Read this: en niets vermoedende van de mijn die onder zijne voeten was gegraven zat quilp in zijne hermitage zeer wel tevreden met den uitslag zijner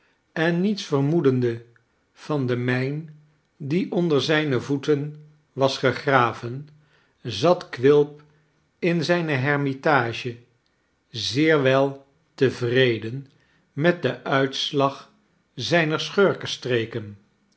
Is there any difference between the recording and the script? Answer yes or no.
no